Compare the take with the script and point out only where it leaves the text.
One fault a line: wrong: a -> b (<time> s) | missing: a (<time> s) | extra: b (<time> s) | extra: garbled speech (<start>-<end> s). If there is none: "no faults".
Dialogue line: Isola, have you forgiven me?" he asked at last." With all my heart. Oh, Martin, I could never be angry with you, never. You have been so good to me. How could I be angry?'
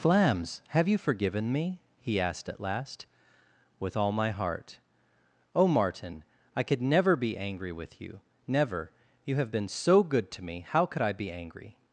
wrong: Isola -> Flams (0.0 s)